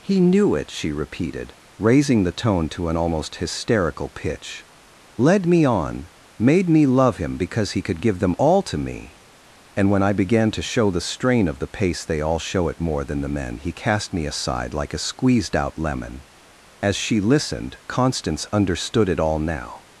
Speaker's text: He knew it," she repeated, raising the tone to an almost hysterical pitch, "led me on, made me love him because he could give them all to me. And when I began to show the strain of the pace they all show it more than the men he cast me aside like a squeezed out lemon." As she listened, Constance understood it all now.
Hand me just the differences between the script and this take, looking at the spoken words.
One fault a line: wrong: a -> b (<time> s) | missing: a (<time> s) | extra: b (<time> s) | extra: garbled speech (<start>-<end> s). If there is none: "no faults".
no faults